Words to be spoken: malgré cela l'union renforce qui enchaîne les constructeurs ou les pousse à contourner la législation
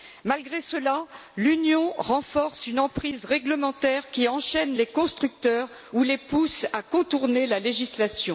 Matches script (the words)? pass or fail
fail